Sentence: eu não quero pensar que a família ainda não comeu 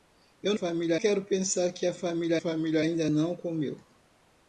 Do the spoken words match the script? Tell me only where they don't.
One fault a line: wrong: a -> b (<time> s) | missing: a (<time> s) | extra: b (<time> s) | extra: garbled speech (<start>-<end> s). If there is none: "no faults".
wrong: não -> família (0.5 s)
extra: família (2.4 s)